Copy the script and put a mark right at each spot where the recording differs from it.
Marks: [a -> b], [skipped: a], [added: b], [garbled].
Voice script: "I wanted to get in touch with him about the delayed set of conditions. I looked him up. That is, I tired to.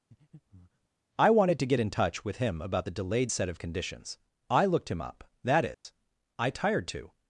"I wanted to get in touch with him about the delayed set of conditions. I looked him up. That is, I tired to.